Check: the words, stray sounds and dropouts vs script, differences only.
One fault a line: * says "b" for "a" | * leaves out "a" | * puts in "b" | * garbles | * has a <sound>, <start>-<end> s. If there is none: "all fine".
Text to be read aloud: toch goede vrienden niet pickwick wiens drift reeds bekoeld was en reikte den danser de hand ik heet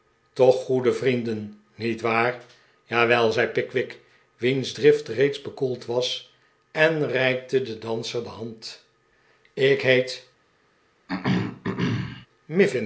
* puts in "waar jawel zei"
* has a throat clearing, 11.1-12.3 s